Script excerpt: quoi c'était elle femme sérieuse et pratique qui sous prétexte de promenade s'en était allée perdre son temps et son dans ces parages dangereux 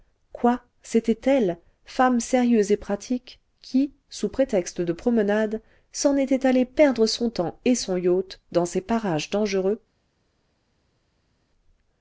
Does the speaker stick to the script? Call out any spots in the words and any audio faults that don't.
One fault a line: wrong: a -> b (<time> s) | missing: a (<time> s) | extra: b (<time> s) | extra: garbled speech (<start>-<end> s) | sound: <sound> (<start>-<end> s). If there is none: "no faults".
extra: yacht (8.0 s)